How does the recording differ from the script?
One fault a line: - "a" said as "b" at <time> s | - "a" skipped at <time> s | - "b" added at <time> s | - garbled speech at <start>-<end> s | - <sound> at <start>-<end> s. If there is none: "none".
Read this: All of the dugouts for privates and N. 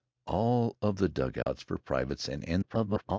- dropout at 1.4-1.5 s
- garbled speech at 2.6-3.2 s